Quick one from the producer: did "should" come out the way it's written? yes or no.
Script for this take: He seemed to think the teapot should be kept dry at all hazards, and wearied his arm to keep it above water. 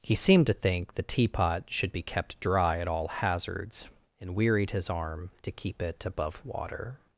yes